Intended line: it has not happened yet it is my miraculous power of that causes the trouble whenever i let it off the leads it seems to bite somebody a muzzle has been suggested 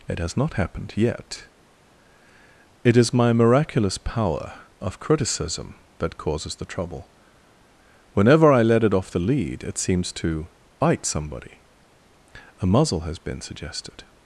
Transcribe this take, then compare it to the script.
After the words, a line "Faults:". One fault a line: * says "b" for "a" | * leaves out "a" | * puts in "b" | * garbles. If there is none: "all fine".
it has not happened yet it is my miraculous power of criticism that causes the trouble whenever i let it off the lead it seems to bite somebody a muzzle has been suggested
Faults:
* puts in "criticism"
* says "lead" for "leads"